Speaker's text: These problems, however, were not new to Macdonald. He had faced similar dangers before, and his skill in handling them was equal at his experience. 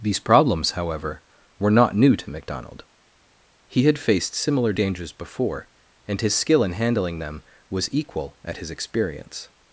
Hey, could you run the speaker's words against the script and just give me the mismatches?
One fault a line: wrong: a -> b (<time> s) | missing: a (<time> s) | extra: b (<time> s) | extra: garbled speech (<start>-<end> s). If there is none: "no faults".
no faults